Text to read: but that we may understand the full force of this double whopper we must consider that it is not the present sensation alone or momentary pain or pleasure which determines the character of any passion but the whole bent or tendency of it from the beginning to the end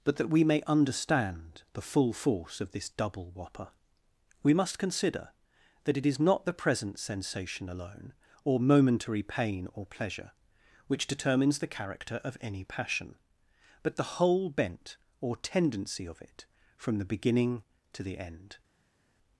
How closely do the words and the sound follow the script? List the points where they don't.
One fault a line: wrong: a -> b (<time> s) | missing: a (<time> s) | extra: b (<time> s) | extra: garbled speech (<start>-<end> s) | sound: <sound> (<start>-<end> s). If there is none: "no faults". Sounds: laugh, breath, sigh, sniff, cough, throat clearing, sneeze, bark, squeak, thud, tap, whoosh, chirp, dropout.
no faults